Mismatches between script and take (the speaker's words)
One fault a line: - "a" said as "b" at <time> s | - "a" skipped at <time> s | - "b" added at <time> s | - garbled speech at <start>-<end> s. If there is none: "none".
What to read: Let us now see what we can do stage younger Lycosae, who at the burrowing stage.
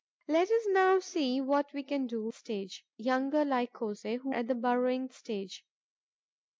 none